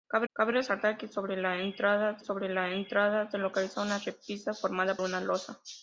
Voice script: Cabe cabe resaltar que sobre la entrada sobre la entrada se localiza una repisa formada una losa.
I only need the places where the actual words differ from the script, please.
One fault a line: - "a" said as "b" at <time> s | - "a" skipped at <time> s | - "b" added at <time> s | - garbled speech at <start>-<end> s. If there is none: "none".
none